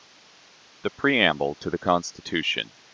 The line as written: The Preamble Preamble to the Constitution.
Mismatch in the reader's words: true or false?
true